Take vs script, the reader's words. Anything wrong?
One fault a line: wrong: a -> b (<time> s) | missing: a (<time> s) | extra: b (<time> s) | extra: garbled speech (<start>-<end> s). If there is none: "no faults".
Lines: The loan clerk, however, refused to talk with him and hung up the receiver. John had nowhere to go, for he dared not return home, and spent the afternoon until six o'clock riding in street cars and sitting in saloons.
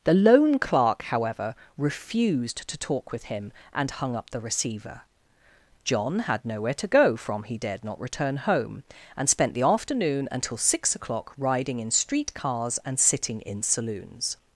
wrong: for -> from (7.2 s)